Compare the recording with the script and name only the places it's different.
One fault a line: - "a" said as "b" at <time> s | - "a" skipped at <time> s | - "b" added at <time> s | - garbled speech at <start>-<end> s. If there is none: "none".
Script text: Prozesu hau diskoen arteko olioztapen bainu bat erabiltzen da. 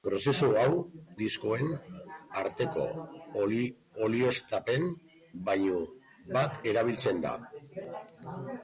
none